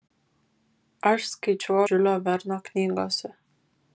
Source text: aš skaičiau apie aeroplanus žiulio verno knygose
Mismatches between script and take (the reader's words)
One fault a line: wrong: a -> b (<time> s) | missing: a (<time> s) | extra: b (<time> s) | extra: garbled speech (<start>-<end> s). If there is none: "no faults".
missing: apie aeroplanus (1.8 s)